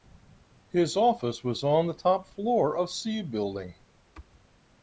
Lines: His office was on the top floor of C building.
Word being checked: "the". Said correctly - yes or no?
yes